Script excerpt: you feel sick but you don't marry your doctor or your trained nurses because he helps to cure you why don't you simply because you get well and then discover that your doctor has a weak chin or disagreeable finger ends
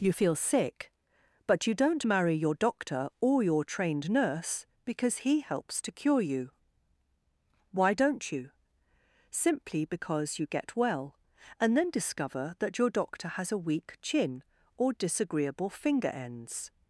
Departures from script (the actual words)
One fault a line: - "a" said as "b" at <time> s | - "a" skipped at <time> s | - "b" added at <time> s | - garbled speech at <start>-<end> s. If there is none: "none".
- "nurses" said as "nurse" at 4.1 s